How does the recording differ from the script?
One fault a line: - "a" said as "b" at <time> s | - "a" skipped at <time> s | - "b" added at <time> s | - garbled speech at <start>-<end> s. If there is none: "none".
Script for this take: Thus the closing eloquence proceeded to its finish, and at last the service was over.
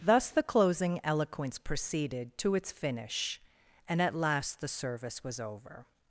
none